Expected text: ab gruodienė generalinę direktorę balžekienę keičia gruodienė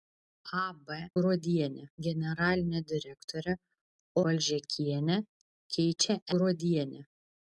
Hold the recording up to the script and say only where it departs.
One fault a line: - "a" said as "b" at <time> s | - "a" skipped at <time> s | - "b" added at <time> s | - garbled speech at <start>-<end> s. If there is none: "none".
none